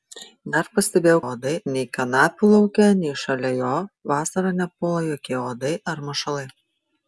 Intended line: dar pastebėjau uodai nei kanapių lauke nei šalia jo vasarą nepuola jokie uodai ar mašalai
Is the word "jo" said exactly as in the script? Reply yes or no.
yes